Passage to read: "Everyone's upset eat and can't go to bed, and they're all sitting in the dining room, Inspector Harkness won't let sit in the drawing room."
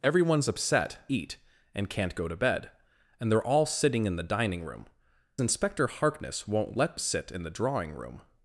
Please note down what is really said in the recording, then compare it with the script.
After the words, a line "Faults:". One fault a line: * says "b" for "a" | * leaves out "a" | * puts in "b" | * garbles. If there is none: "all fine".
"Everyone's upset eat and can't go to bed, and they're all sitting in the dining room, Inspector Harkness won't let sit in the drawing room."
Faults:
all fine